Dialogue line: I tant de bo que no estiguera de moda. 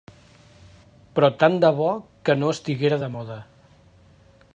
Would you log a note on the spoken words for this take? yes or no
yes